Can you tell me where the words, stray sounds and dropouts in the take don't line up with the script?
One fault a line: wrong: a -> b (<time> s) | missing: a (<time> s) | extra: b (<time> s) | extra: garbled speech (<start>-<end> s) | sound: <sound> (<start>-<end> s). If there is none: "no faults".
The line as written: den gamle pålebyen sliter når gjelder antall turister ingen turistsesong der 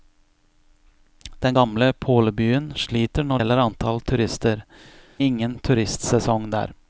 no faults